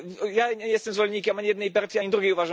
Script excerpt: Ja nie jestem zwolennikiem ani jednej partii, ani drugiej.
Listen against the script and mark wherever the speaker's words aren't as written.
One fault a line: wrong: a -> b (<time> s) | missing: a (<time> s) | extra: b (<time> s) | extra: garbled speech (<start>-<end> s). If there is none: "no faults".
no faults